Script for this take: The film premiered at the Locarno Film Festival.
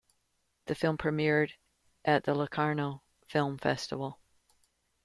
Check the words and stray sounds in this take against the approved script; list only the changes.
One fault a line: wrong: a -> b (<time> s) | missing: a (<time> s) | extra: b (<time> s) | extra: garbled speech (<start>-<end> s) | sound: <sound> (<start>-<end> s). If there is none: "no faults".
no faults